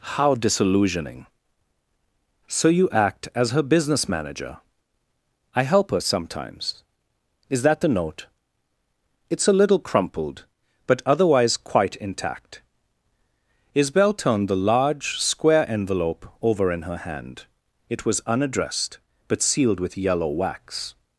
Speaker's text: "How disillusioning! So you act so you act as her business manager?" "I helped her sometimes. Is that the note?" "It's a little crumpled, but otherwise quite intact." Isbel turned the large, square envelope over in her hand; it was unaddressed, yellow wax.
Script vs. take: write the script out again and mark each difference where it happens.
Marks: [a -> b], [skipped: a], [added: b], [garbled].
"How disillusioning! So you act [skipped: so you act] as her business manager?" "I [helped -> help] her sometimes. Is that the note?" "It's a little crumpled, but otherwise quite intact." Isbel turned the large, square envelope over in her hand; it was unaddressed, [added: but sealed with] yellow wax.